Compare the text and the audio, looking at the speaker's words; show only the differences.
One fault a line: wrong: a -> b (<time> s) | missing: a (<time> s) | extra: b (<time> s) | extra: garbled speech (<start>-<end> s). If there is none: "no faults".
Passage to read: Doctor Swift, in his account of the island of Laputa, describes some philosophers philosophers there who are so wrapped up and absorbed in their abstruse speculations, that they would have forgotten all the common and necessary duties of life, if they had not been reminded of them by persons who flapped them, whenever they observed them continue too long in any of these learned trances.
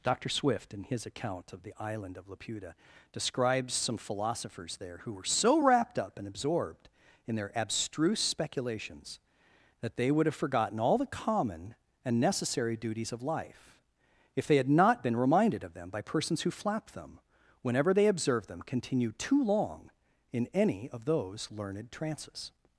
missing: philosophers (4.8 s)
wrong: are -> were (5.1 s)
wrong: these -> those (21.1 s)